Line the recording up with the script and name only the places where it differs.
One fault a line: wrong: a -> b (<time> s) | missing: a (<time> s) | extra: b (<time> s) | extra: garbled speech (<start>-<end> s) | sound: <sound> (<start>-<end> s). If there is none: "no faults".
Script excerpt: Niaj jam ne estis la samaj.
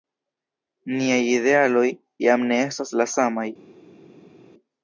extra: idealoj (1.3 s)
wrong: estis -> estas (2.7 s)